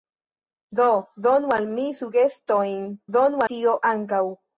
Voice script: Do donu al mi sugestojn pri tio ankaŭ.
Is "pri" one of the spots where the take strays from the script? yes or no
yes